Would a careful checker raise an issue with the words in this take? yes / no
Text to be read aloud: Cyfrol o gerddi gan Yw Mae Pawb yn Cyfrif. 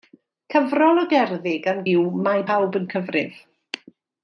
no